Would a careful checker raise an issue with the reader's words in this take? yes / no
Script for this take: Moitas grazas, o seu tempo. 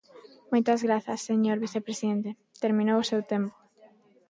yes